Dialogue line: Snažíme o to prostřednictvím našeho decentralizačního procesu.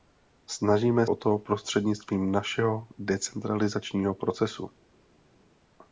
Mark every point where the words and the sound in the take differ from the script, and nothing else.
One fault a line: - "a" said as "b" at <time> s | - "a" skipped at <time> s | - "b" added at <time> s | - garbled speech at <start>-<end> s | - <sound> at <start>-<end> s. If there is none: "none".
none